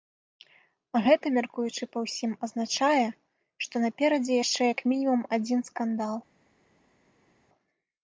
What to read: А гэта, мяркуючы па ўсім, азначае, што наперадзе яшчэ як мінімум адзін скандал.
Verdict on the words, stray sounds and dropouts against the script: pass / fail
pass